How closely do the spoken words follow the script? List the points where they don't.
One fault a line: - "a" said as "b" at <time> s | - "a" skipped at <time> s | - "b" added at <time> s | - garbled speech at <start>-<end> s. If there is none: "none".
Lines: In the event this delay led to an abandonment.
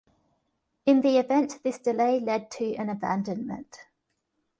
none